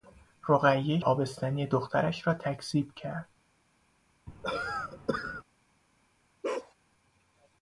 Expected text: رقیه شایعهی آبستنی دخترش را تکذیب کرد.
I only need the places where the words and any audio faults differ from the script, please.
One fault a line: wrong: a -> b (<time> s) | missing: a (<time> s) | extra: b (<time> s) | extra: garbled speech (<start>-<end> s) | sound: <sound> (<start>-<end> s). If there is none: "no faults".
missing: شایعهی (1.0 s)
sound: cough (4.3-5.4 s)
sound: bark (6.4-6.7 s)